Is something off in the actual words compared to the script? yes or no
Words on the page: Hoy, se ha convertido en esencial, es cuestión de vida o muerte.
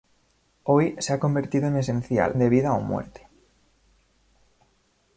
yes